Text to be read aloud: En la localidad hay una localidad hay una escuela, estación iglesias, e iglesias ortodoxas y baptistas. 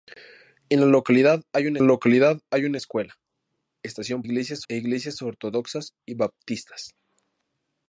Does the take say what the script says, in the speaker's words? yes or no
yes